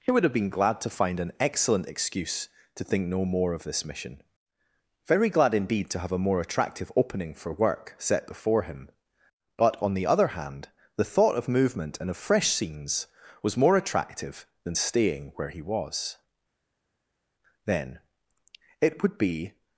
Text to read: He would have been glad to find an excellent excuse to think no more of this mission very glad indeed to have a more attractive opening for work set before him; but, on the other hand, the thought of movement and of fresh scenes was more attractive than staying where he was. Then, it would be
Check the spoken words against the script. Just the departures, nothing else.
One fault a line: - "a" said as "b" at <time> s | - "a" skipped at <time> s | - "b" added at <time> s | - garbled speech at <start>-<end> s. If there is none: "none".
none